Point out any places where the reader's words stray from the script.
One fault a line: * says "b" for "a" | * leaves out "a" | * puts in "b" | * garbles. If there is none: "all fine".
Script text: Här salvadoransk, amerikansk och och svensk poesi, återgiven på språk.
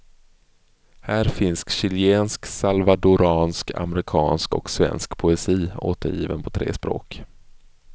* puts in "finns chilensk"
* leaves out "och"
* puts in "tre"